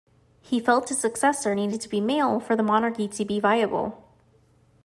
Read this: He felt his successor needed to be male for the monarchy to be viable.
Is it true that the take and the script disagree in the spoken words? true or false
false